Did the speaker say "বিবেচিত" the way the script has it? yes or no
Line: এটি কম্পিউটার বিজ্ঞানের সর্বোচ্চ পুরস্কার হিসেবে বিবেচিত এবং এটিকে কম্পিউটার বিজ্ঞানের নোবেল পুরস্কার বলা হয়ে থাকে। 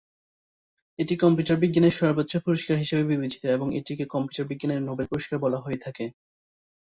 yes